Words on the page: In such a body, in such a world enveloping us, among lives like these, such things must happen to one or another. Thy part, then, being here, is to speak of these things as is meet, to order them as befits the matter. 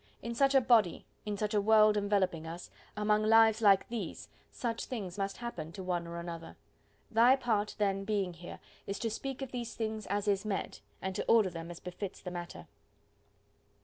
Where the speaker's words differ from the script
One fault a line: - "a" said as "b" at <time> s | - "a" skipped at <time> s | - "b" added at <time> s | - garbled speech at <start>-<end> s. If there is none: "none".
- "and" added at 11.0 s